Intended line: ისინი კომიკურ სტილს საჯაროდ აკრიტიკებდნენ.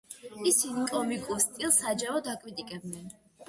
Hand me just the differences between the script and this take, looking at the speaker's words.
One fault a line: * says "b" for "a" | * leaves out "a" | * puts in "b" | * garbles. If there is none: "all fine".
all fine